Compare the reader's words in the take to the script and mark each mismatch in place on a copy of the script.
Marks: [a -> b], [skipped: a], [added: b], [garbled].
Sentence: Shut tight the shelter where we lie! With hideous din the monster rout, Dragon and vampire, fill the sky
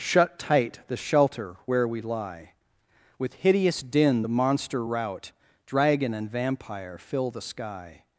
Shut tight the shelter where we lie! With hideous din the monster rout, Dragon and vampire, fill the sky